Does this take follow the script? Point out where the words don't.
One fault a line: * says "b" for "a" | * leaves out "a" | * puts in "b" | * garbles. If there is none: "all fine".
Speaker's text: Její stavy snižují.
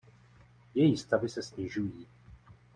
* puts in "se"